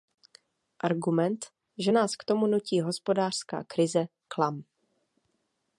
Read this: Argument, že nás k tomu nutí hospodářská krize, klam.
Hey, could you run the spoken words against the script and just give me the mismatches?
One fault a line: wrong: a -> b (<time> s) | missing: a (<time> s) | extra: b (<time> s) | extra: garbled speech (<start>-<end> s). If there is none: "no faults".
no faults